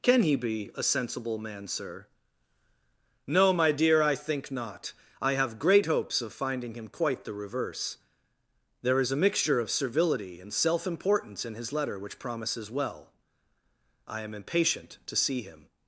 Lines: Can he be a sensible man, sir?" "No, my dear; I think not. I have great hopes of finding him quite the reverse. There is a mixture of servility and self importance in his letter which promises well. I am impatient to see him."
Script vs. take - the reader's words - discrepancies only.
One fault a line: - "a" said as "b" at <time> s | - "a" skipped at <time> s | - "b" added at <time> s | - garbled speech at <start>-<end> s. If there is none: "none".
none